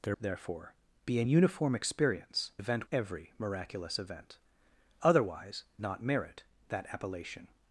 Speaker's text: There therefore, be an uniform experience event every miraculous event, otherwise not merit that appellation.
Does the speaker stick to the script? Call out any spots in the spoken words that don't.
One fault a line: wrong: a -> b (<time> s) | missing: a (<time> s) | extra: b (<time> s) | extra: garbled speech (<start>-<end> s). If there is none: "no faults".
no faults